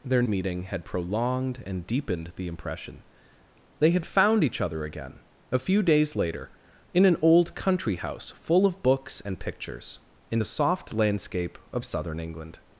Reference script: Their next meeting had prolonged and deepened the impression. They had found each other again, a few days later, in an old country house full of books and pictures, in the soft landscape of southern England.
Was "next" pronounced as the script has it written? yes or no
no